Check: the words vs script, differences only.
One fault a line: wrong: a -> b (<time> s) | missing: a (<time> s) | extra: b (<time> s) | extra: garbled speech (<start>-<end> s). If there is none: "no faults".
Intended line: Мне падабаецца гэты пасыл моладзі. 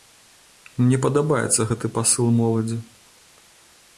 no faults